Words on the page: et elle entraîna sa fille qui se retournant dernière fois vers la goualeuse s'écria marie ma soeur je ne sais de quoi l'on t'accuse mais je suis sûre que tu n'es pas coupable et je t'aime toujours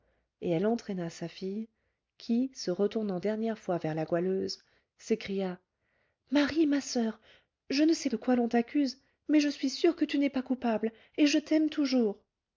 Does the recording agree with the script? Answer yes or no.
yes